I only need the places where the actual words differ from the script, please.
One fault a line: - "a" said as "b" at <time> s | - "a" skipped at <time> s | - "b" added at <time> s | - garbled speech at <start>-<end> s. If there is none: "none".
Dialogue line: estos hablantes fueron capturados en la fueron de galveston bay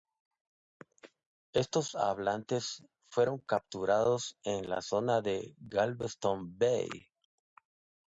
- "fueron" said as "zona" at 4.8 s